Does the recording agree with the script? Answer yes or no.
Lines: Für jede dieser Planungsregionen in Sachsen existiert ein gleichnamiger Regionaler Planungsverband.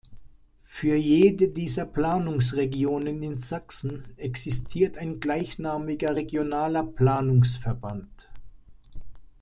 yes